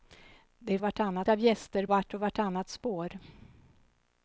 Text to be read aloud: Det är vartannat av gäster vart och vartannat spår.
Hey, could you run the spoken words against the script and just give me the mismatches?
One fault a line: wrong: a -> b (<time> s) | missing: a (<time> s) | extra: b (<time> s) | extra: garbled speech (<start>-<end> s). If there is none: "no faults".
no faults